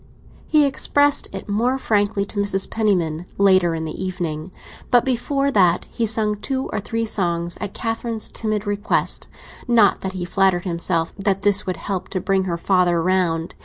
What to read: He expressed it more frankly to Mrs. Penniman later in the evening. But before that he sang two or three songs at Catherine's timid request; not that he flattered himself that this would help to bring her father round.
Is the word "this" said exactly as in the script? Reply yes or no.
yes